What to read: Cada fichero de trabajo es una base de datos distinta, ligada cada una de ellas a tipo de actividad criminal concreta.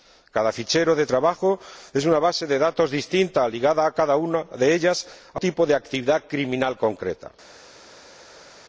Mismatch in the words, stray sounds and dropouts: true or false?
false